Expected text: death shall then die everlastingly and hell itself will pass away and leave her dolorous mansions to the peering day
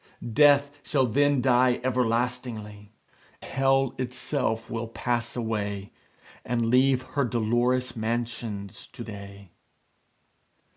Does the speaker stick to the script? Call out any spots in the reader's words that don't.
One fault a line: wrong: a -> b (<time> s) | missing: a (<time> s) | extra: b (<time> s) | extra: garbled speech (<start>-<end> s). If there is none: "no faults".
missing: and (2.9 s)
missing: the peering (9.0 s)